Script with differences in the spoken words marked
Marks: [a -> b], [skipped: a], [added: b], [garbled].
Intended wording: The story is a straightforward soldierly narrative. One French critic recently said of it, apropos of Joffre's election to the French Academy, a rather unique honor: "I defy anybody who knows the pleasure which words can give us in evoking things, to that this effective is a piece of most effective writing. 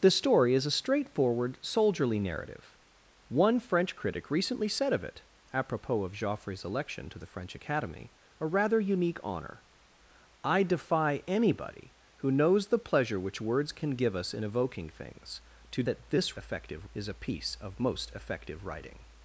The story is a straightforward soldierly narrative. One French critic recently said of it, apropos of Joffre's election to the French Academy, a rather unique honor: "I defy anybody who knows the pleasure which words can give us in evoking things, to that this effective is a piece of most effective writing.